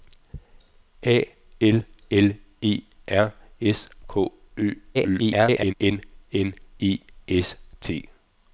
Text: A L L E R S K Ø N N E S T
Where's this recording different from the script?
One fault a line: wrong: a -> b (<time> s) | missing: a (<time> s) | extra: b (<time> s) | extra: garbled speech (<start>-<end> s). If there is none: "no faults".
extra: garbled speech (4.9-5.7 s)